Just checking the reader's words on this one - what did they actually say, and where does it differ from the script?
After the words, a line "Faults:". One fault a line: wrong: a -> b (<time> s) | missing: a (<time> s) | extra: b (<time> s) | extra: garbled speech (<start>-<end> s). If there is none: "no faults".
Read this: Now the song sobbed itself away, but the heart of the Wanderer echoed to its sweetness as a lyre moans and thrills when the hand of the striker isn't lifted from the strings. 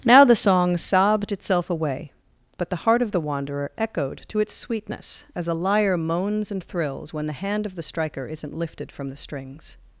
Now the song sobbed itself away, but the heart of the Wanderer echoed to its sweetness as a lyre moans and thrills when the hand of the striker isn't lifted from the strings.
Faults:
no faults